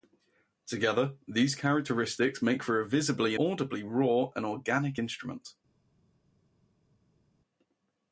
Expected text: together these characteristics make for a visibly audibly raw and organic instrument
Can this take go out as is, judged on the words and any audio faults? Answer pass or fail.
pass